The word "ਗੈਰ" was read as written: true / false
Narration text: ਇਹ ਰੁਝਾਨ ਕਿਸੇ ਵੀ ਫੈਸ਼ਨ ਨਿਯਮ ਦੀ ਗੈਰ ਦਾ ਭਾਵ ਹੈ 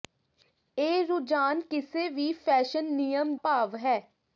false